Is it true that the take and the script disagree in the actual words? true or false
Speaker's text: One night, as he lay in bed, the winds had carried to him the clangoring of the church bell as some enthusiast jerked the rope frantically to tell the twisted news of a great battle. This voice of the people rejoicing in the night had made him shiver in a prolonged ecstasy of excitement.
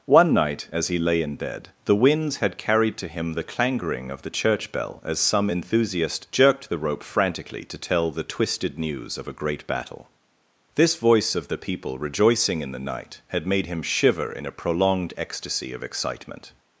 false